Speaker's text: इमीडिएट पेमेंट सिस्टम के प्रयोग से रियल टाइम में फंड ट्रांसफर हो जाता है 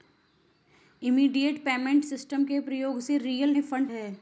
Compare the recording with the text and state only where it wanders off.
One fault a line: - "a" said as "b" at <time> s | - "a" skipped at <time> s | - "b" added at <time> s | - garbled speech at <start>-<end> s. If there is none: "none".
- "टाइम" skipped at 3.5 s
- "ट्रांसफर हो जाता" skipped at 3.9 s